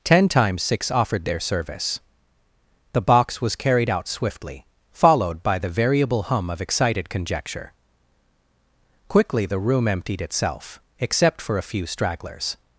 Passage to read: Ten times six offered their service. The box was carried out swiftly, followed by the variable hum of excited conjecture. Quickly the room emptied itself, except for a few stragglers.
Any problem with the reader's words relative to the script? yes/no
no